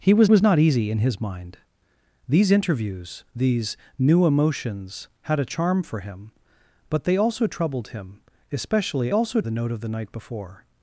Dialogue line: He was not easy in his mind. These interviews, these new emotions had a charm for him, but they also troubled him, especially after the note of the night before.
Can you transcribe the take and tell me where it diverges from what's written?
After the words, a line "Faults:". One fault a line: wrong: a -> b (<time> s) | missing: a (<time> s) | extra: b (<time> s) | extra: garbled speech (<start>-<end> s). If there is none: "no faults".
He was was not easy in his mind. These interviews, these new emotions had a charm for him, but they also troubled him, especially also the note of the night before.
Faults:
extra: was (0.3 s)
wrong: after -> also (9.1 s)